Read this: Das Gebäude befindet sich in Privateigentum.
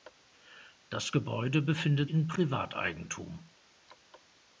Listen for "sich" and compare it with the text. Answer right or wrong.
wrong